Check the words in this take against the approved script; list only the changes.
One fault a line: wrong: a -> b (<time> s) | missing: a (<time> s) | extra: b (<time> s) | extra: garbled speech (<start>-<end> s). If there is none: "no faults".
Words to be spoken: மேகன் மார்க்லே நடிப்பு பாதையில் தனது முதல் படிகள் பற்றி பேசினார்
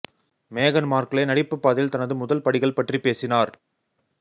no faults